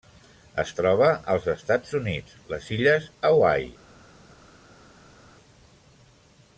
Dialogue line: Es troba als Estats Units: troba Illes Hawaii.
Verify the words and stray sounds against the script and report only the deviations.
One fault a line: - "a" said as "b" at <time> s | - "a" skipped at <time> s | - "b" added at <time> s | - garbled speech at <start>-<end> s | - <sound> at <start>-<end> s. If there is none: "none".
- "troba" said as "les" at 2.5 s